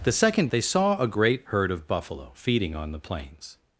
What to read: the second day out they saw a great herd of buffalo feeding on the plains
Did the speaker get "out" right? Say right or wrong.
wrong